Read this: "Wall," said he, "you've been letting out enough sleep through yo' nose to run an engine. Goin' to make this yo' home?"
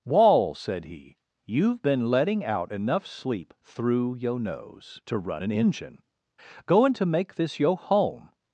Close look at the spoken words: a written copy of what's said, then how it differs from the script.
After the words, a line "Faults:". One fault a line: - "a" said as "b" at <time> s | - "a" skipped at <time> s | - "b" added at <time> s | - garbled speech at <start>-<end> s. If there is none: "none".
"Wall," said he, "you've been letting out enough sleep through yo' nose to run an engine. Goin' to make this yo' home?"
Faults:
none